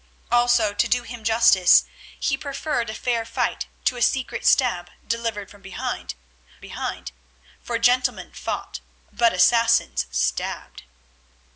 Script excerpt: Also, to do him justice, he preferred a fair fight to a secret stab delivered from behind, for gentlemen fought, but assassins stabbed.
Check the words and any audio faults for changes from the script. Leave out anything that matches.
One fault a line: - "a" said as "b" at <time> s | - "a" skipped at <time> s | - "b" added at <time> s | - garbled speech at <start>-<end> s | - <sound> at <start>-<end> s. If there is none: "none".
- "behind" added at 6.6 s